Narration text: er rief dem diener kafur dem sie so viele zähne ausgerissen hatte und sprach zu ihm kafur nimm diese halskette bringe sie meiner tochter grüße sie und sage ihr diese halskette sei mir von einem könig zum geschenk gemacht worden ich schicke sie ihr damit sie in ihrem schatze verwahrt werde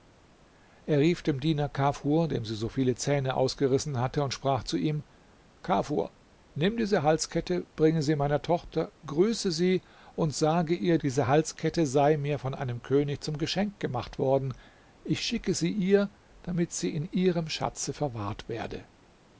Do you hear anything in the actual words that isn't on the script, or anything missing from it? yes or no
no